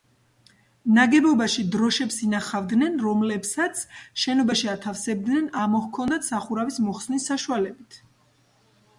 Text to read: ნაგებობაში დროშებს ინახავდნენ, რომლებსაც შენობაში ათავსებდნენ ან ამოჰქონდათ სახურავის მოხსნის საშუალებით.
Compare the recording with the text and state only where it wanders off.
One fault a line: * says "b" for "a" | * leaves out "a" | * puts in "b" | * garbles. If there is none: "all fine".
* leaves out "ან"